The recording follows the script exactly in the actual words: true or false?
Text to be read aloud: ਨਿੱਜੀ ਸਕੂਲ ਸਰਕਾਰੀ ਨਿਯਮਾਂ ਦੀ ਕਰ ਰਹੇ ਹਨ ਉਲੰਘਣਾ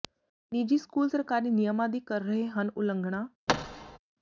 true